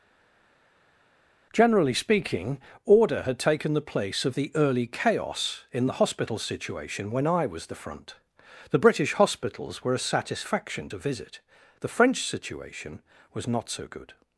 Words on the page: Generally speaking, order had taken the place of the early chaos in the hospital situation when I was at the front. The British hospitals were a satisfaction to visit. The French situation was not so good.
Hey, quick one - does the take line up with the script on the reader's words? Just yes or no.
no